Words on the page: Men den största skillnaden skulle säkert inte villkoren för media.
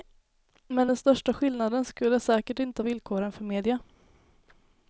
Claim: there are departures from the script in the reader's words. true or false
false